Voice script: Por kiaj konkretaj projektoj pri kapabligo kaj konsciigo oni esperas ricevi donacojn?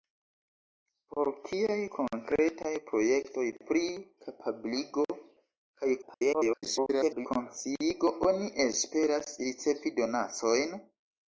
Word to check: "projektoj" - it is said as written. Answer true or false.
true